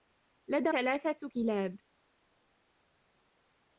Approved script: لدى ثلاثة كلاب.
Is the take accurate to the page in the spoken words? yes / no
yes